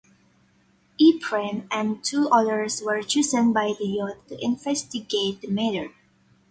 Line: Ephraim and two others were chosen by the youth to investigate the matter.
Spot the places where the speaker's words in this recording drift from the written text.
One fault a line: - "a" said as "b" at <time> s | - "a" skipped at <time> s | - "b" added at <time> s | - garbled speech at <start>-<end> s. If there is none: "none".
none